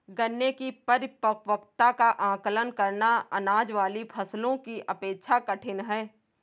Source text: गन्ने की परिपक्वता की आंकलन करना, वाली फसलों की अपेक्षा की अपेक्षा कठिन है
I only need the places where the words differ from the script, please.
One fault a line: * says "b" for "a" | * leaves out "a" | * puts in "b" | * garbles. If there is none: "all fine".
* says "का" for "की"
* puts in "अनाज"
* leaves out "की अपेक्षा"